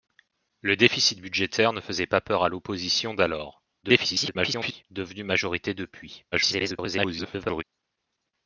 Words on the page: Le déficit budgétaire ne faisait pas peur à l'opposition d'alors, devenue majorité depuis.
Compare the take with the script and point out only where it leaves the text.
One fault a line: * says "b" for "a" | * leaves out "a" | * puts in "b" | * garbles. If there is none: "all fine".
* garbles
* garbles